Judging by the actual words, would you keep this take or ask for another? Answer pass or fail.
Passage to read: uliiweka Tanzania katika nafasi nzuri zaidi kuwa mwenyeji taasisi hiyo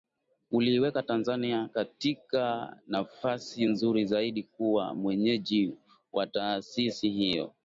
fail